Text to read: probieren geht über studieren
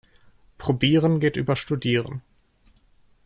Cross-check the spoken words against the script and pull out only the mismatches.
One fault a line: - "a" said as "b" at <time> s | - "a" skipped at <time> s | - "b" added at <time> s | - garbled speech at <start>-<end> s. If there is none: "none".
none